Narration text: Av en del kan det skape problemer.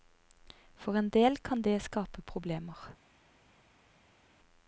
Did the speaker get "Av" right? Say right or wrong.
wrong